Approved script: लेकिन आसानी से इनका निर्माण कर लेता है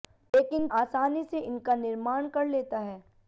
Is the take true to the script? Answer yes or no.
yes